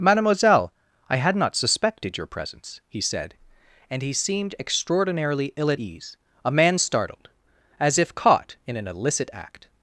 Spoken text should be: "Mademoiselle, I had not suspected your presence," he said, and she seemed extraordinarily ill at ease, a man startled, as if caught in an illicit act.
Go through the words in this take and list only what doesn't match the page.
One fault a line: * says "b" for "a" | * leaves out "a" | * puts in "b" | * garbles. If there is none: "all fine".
* says "he" for "she"